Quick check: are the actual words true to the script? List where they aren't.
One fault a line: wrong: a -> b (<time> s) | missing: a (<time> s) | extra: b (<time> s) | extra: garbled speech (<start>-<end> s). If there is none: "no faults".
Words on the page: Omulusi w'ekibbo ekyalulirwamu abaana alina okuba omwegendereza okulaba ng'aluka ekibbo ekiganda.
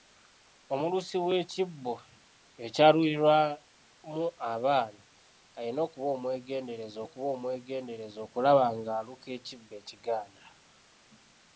extra: okuba omwegendereza (7.0 s)